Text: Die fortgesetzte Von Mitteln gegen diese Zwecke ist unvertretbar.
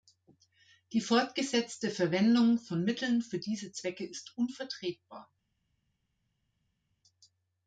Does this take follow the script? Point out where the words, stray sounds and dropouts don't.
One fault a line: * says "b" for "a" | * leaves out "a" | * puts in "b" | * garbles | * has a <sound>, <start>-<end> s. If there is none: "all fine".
* puts in "Verwendung"
* says "für" for "gegen"